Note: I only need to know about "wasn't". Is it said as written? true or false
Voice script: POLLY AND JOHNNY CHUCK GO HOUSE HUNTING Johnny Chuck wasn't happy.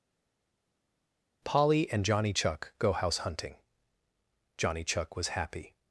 false